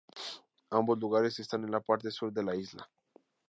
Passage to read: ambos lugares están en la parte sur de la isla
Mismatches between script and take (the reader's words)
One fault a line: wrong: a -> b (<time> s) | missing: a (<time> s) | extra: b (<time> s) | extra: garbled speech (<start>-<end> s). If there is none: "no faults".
no faults